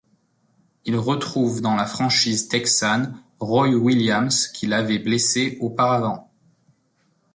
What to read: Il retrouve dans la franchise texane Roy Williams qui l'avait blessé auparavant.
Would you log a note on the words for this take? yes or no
no